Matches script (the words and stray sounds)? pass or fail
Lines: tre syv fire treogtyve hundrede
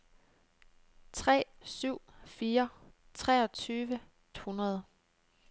pass